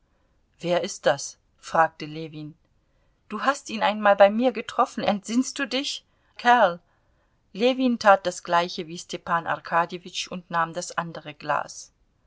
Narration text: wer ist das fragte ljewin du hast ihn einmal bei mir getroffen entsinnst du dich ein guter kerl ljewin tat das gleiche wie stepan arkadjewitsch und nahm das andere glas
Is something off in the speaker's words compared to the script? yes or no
yes